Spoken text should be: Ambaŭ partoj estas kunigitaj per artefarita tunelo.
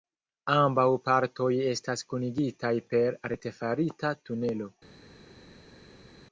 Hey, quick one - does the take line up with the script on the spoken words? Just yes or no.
yes